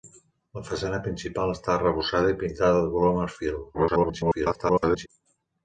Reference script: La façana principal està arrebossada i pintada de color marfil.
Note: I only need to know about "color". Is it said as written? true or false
true